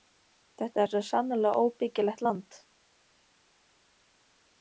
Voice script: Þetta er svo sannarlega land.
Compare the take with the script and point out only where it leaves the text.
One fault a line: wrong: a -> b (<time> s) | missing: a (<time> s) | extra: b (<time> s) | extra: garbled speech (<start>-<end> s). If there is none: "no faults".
extra: óbyggilegt (1.7 s)